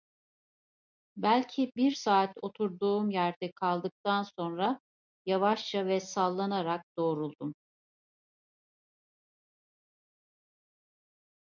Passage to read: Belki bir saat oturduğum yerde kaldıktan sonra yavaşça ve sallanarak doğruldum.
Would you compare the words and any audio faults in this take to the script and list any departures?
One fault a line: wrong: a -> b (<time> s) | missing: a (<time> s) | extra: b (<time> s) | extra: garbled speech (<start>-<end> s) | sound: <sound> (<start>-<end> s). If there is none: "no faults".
no faults